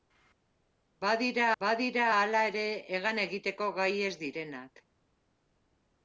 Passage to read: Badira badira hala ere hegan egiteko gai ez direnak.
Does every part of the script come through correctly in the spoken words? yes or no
yes